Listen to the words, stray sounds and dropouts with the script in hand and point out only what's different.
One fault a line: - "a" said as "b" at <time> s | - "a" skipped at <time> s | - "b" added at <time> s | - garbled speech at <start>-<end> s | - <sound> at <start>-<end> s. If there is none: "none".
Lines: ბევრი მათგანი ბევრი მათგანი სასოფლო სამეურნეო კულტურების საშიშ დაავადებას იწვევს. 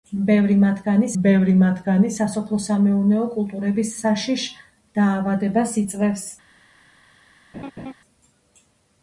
- laugh at 7.5-7.9 s